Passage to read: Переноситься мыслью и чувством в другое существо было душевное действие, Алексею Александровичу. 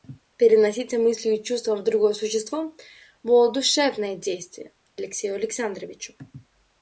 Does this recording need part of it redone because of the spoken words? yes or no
no